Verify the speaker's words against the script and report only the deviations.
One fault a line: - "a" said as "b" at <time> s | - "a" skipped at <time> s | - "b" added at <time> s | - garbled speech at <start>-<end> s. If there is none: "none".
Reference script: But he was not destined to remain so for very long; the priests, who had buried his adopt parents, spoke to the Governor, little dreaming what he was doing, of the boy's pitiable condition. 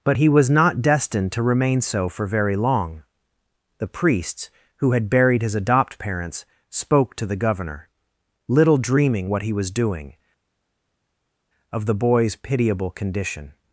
none